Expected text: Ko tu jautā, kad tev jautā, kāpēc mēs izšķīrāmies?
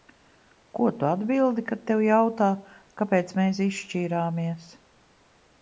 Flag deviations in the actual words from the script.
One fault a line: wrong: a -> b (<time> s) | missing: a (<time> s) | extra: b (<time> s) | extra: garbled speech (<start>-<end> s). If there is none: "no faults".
wrong: jautā -> atbildi (1.1 s)